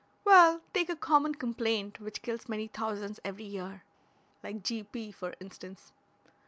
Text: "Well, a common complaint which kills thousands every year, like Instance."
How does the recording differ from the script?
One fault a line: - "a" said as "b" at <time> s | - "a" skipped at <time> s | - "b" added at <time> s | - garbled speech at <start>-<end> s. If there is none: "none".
- "take" added at 0.7 s
- "many" added at 2.5 s
- "G P for" added at 4.6 s